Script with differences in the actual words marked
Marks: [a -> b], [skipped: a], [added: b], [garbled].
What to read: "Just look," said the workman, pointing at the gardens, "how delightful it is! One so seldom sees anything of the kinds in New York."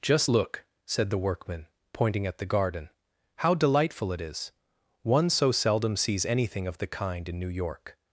"Just look," said the workman, pointing at the [gardens, -> garden] "how delightful it is! One so seldom sees anything of the [kinds -> kind] in New York."